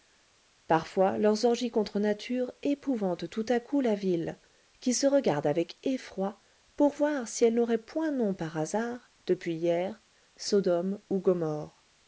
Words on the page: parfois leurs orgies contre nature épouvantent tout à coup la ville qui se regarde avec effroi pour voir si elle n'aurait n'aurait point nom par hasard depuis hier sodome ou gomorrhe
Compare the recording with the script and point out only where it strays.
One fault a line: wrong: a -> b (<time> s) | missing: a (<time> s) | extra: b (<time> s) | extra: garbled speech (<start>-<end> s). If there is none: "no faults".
missing: n'aurait (7.8 s)